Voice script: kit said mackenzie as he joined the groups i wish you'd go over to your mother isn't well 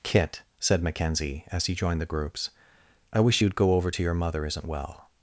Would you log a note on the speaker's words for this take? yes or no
no